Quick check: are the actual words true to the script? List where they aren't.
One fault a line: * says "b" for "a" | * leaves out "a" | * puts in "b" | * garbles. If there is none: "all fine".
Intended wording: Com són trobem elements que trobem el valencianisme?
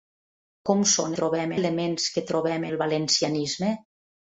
all fine